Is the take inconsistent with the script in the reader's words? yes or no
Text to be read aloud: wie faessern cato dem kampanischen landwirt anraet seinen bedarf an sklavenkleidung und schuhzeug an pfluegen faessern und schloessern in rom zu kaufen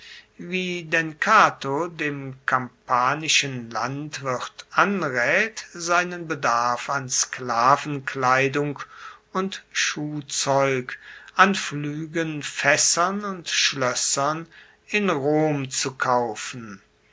yes